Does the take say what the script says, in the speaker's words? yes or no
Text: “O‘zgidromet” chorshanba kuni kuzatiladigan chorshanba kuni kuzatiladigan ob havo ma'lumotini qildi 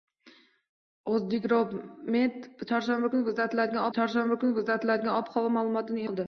yes